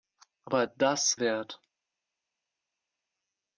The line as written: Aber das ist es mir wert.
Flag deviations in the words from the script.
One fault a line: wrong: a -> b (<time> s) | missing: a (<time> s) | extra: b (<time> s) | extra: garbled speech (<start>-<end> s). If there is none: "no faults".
missing: ist es mir (1.1 s)